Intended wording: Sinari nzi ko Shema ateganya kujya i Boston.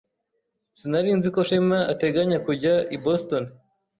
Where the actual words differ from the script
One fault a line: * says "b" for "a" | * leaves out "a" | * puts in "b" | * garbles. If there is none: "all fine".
all fine